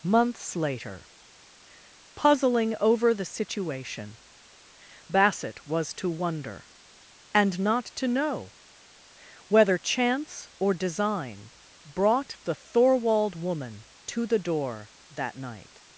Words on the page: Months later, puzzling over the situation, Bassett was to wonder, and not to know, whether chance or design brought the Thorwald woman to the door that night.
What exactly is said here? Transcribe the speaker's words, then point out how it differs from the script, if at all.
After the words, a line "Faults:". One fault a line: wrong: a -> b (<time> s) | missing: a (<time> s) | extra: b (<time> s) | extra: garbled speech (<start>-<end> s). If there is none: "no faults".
Months later, puzzling over the situation, Bassett was to wonder, and not to know, whether chance or design brought the Thorwald woman to the door that night.
Faults:
no faults